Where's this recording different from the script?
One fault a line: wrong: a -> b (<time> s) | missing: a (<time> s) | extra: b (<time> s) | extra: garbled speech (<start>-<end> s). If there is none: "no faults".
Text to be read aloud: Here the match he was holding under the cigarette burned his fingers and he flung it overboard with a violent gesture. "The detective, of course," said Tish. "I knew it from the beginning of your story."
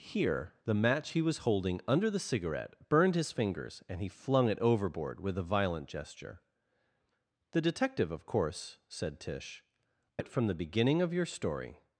missing: knew (10.2 s)